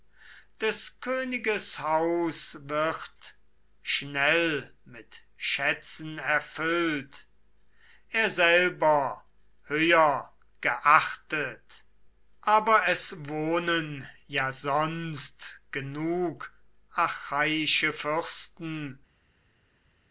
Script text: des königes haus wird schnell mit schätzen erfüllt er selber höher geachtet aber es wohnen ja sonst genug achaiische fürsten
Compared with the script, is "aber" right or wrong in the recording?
right